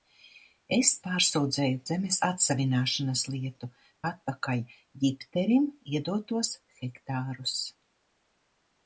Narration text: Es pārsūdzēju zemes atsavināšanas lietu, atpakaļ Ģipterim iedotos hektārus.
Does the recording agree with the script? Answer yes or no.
yes